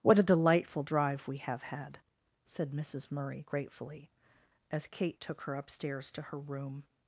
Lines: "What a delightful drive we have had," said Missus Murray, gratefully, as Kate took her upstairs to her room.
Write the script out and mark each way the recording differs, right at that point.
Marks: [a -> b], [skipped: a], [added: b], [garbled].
"What a delightful drive we have had," said Missus Murray, gratefully, as Kate took her upstairs to her room.